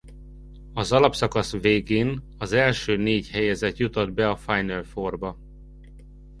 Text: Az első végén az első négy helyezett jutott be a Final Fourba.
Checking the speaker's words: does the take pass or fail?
fail